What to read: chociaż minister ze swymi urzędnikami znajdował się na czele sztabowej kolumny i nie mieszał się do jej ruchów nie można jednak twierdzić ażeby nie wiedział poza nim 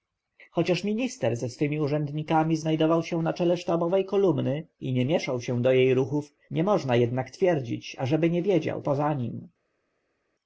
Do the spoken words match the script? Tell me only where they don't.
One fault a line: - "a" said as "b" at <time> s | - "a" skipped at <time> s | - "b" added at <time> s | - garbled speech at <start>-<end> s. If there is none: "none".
none